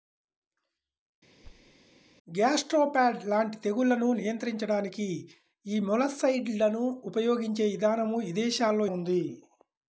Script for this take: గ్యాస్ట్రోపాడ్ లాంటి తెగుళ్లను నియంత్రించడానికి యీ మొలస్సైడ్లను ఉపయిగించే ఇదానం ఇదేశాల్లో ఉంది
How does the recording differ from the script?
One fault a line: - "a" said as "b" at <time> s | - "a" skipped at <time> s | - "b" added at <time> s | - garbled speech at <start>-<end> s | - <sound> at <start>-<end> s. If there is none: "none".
- thud at 1.4-1.8 s